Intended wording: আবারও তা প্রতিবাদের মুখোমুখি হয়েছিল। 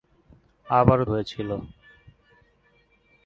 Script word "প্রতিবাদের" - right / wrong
wrong